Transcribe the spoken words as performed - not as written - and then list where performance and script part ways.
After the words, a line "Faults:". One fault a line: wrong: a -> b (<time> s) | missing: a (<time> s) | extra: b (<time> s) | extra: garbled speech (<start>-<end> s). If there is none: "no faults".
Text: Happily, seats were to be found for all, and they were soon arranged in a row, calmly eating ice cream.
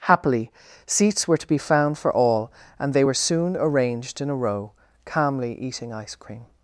Happily, seats were to be found for all, and they were soon arranged in a row, calmly eating ice cream.
Faults:
no faults